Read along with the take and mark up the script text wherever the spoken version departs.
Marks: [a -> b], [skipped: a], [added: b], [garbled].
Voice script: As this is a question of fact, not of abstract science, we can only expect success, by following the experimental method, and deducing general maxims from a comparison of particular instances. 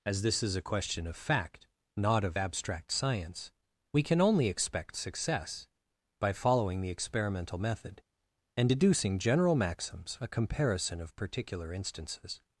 As this is a question of fact, not of abstract science, we can only expect success, by following the experimental method, and deducing general maxims [skipped: from] a comparison of particular instances.